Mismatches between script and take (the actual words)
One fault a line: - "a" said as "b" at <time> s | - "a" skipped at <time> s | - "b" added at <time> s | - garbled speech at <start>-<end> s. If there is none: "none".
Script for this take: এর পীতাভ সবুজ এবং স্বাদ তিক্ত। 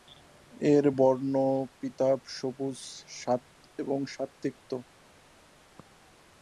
- "বর্ণ" added at 1.0 s